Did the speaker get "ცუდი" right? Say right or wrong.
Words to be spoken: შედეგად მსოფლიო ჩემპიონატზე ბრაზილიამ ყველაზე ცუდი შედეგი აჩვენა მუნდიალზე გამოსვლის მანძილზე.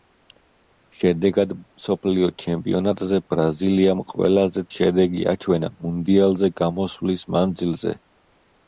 wrong